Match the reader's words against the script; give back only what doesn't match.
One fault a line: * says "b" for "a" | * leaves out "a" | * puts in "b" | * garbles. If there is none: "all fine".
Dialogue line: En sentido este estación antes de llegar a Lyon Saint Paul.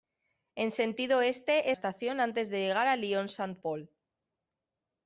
all fine